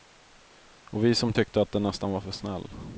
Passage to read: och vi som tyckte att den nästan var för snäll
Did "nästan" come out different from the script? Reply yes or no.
no